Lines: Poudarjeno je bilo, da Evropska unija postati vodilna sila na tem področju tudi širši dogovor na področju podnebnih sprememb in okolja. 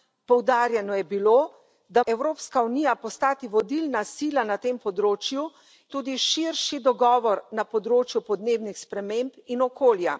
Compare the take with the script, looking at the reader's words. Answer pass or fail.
pass